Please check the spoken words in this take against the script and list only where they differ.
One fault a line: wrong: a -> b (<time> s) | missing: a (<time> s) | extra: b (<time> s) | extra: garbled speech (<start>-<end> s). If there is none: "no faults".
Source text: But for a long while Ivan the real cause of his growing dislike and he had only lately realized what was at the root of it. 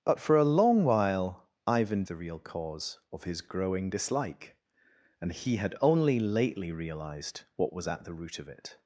no faults